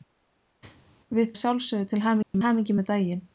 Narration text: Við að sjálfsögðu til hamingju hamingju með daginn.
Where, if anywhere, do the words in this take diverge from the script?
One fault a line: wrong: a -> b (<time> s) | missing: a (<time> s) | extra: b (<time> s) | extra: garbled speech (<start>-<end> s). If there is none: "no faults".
no faults